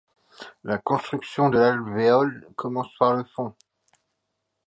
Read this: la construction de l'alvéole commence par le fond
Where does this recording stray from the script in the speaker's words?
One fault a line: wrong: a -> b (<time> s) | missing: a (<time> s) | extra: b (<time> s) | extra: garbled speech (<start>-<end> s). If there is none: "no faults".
no faults